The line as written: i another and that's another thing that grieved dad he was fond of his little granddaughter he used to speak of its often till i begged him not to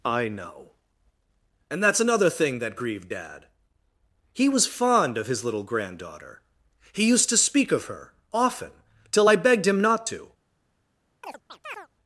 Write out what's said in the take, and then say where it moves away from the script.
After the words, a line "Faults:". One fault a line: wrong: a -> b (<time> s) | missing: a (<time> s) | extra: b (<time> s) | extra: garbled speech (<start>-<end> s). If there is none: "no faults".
i know and that's another thing that grieved dad he was fond of his little granddaughter he used to speak of her often till i begged him not to
Faults:
wrong: another -> know (0.3 s)
wrong: its -> her (7.9 s)